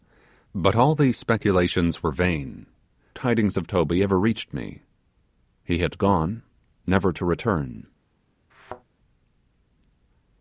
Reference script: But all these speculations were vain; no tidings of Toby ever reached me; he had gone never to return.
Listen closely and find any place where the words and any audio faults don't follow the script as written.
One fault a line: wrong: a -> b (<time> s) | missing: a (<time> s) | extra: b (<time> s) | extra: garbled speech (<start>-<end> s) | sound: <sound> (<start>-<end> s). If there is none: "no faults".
missing: no (2.6 s)
sound: thud (8.5-8.8 s)